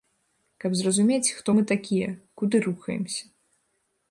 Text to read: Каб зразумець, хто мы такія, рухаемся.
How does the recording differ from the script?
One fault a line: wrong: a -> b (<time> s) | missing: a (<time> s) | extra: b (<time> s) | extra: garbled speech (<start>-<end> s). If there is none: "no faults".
extra: куды (2.4 s)